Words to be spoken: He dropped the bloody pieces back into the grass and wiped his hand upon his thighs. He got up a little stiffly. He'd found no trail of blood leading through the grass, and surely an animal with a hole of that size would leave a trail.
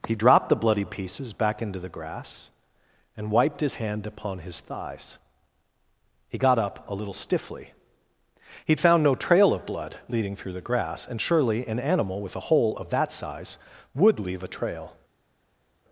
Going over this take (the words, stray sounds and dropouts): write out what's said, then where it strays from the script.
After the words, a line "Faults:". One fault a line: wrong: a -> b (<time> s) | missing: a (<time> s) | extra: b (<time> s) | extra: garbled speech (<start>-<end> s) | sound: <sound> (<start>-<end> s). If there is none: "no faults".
He dropped the bloody pieces back into the grass and wiped his hand upon his thighs. He got up a little stiffly. He'd found no trail of blood leading through the grass, and surely an animal with a hole of that size would leave a trail.
Faults:
no faults